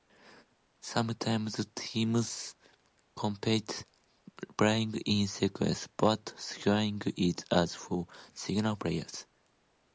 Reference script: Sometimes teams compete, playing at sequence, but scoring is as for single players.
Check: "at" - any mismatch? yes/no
yes